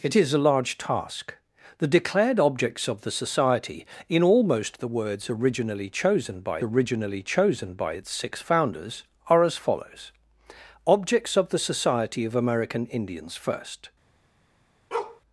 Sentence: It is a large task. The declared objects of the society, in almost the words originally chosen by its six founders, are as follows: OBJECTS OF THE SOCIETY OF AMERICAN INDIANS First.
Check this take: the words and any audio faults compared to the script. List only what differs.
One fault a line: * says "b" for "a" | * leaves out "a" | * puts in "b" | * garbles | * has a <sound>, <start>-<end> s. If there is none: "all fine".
* puts in "originally chosen by"
* has a bark, 14.9-15.2 s